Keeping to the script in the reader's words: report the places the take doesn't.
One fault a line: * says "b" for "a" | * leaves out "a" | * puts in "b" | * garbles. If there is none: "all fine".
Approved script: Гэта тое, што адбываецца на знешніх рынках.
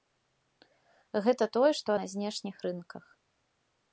* leaves out "адбываецца"